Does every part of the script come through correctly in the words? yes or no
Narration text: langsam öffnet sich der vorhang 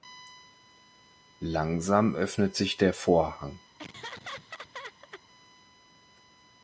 yes